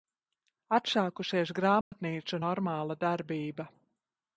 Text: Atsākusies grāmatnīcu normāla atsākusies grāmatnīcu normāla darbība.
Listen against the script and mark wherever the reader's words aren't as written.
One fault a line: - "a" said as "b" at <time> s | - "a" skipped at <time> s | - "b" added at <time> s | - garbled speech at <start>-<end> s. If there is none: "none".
- "atsākusies grāmatnīcu normāla" skipped at 3.0 s